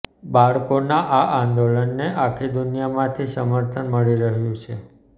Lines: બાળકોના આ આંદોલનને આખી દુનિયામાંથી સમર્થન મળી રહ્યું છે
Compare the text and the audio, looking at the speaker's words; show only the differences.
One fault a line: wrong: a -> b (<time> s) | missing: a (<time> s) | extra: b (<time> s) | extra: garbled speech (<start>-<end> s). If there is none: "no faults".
no faults